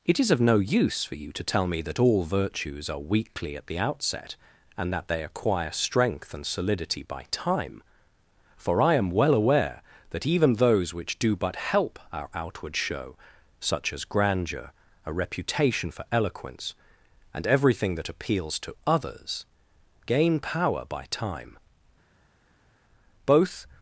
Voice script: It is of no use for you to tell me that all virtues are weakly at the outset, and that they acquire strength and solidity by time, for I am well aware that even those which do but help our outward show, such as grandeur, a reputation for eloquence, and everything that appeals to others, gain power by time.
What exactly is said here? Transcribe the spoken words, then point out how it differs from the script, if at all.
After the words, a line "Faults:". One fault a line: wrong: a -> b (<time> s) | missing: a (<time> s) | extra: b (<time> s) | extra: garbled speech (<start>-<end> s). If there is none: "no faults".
It is of no use for you to tell me that all virtues are weakly at the outset, and that they acquire strength and solidity by time, for I am well aware that even those which do but help our outward show, such as grandeur, a reputation for eloquence, and everything that appeals to others, gain power by time. Both
Faults:
extra: Both (23.3 s)